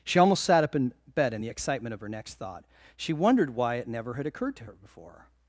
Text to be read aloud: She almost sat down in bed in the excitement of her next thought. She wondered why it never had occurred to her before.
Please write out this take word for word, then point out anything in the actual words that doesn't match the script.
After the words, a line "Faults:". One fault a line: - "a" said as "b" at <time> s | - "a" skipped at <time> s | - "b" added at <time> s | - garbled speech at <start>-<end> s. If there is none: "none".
She almost sat up in bed in the excitement of her next thought. She wondered why it never had occurred to her before.
Faults:
- "down" said as "up" at 0.6 s